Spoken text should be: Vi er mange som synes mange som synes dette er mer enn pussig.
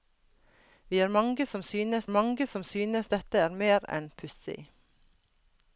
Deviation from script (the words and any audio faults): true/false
false